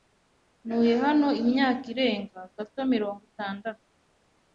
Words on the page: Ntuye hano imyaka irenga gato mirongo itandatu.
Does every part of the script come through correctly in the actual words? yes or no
yes